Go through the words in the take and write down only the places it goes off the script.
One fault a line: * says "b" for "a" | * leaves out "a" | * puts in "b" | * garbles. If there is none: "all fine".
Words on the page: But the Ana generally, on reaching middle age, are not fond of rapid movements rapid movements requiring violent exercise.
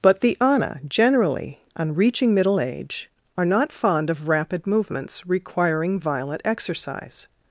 * leaves out "rapid movements"